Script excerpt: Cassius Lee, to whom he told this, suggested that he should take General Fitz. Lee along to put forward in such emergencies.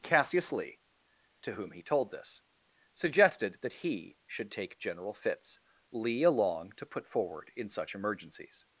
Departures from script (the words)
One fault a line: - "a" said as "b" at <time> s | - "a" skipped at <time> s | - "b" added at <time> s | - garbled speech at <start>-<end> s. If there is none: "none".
none